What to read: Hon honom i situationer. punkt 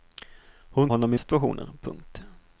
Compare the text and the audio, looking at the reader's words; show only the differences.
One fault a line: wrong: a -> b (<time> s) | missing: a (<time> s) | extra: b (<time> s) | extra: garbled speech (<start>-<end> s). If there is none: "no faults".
no faults